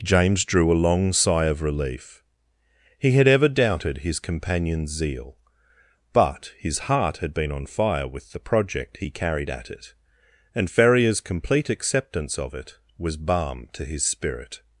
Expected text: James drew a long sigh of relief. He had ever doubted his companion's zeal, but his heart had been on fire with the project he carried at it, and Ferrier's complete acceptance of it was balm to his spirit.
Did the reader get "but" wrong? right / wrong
right